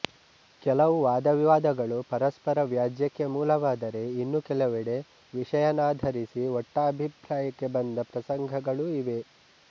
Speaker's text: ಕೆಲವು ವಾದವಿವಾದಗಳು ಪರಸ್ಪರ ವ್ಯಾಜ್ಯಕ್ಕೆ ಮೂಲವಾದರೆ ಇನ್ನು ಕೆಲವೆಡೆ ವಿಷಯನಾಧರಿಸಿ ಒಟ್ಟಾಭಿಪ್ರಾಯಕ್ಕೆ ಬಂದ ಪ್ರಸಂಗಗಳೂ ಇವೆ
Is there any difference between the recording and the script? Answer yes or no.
no